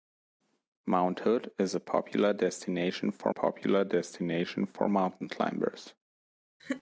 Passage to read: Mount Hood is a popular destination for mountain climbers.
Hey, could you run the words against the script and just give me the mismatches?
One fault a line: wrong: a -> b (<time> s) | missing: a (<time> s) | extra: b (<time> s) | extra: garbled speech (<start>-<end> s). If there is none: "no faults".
extra: popular destination for (3.3 s)